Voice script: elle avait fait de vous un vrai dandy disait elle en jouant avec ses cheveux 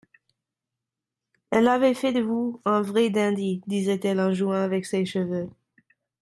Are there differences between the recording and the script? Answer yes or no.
no